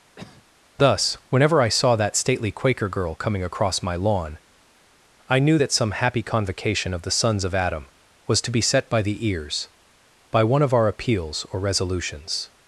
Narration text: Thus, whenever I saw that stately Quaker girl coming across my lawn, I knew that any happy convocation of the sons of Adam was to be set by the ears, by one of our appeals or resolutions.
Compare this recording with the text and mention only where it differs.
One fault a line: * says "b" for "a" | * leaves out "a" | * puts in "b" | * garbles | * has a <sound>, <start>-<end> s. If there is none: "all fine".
* has a cough, 0.2-0.5 s
* says "some" for "any"